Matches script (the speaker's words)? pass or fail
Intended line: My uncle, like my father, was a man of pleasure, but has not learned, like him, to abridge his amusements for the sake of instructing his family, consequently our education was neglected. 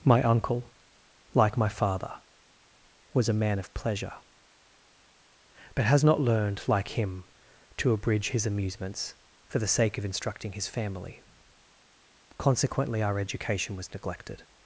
pass